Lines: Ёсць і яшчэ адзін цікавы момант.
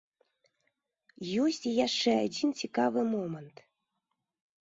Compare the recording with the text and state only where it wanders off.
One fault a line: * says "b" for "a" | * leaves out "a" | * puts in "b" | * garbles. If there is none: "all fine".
all fine